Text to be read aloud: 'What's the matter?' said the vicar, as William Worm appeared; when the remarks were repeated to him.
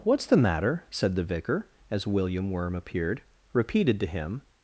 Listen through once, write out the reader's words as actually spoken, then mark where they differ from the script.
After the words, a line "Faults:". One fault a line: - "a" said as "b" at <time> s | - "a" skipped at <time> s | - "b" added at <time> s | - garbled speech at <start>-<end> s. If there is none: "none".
'What's the matter?' said the vicar, as William Worm appeared; repeated to him.
Faults:
- "when the remarks were" skipped at 3.2 s